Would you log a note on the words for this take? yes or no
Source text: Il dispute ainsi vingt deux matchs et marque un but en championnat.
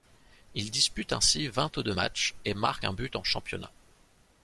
no